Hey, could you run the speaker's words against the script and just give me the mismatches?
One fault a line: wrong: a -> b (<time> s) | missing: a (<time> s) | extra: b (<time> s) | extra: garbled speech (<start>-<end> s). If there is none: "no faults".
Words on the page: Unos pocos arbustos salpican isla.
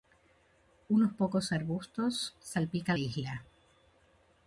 no faults